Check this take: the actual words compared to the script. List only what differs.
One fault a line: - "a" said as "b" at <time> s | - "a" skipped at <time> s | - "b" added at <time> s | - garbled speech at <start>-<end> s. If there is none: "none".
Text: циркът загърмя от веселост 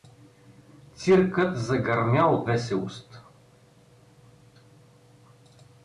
none